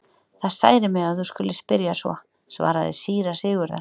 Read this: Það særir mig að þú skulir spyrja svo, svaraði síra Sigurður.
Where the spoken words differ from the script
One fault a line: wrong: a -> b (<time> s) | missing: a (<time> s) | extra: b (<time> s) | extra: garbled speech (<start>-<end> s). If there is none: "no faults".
no faults